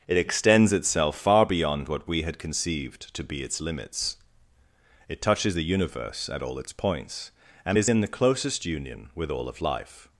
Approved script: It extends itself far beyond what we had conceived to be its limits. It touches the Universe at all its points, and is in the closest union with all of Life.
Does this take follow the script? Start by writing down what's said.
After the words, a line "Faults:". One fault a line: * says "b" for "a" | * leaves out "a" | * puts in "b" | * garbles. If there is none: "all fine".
It extends itself far beyond what we had conceived to be its limits. It touches the Universe at all its points, and is in the closest union with all of Life.
Faults:
all fine